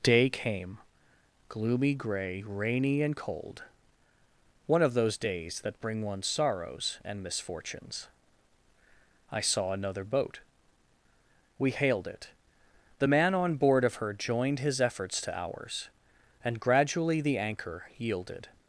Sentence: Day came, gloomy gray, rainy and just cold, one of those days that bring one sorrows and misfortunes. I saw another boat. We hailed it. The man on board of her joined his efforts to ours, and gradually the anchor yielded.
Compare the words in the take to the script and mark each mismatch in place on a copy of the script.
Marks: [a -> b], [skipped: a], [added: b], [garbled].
Day came, gloomy gray, rainy and [skipped: just] cold, one of those days that bring one sorrows and misfortunes. I saw another boat. We hailed it. The man on board of her joined his efforts to ours, and gradually the anchor yielded.